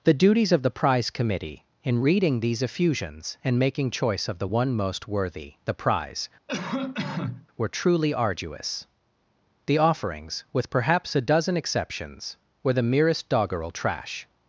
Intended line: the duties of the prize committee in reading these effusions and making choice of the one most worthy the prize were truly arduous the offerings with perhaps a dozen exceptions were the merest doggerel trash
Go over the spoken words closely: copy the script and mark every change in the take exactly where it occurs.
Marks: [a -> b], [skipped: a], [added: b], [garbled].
the duties of the prize committee in reading these effusions and making choice of the one most worthy the prize were truly arduous the offerings with perhaps a dozen exceptions were the merest doggerel trash